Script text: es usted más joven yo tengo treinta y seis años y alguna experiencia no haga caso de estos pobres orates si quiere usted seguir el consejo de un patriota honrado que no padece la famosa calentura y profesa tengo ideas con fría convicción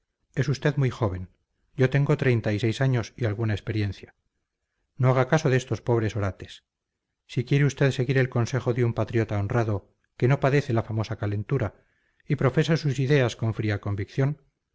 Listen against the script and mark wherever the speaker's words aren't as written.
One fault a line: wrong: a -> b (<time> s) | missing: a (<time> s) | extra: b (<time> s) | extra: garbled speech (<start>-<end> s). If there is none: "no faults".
wrong: más -> muy (0.8 s)
wrong: tengo -> sus (12.8 s)